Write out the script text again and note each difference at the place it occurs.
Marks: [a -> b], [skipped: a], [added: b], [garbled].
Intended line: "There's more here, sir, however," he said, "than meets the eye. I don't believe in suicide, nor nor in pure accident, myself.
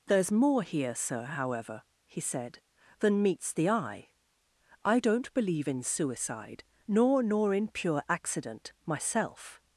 "There's more here, sir, however," he said, "than meets the eye. I don't believe in suicide, nor nor in pure accident, myself.